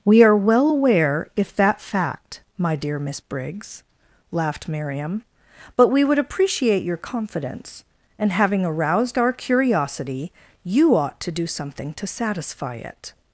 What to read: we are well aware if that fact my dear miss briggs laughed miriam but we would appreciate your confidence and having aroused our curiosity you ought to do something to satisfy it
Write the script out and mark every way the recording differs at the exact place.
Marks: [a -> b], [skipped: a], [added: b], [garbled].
we are well aware if that fact my dear miss briggs laughed miriam but we would appreciate your confidence and having aroused our curiosity you ought to do something to satisfy it